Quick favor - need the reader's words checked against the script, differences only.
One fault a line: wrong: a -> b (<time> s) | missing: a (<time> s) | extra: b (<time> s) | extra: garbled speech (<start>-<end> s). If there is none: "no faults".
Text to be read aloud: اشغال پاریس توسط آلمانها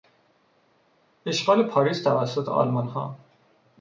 no faults